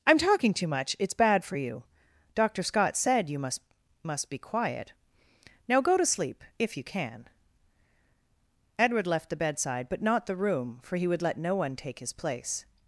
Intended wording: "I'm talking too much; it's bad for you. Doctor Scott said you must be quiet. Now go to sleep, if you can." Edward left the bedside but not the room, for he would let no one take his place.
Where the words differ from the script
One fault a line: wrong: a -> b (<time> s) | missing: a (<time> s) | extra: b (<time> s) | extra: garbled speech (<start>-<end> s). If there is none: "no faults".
extra: must (4.0 s)